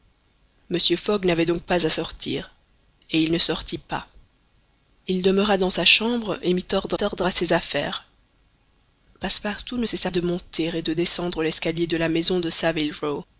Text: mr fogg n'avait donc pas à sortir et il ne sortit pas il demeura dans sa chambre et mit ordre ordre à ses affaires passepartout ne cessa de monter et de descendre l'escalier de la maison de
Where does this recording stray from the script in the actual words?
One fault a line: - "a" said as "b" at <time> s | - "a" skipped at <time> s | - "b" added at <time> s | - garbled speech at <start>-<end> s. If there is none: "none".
none